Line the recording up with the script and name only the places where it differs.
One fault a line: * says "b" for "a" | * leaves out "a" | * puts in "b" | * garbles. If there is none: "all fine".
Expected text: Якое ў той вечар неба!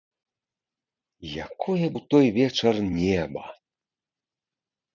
all fine